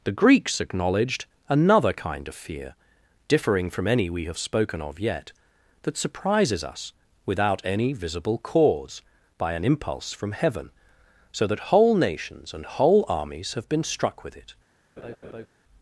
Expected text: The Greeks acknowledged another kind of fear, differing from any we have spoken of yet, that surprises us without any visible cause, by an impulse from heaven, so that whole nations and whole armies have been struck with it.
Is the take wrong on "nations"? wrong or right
right